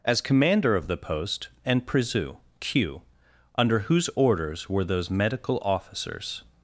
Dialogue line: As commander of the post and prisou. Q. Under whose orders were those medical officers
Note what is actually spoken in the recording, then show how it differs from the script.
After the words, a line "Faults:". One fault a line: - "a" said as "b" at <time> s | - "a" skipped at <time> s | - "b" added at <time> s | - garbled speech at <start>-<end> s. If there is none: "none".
As commander of the post and prisou. Q. Under whose orders were those medical officers
Faults:
none